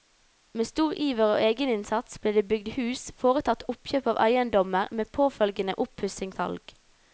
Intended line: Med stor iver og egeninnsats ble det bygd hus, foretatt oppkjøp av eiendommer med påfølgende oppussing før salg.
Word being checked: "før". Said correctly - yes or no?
no